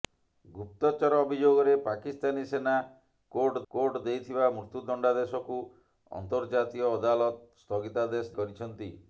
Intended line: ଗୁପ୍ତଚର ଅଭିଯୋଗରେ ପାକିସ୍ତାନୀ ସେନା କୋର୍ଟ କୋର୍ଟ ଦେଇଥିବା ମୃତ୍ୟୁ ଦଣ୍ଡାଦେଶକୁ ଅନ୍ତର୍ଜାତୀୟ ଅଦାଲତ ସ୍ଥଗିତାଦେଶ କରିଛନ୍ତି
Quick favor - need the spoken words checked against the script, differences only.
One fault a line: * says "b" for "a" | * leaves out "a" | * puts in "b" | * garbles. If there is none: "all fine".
all fine